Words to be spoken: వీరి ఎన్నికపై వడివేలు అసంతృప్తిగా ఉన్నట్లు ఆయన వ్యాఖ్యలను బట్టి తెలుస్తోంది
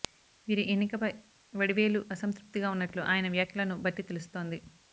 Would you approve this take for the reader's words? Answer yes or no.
yes